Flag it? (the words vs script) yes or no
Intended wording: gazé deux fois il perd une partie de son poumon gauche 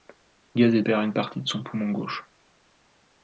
yes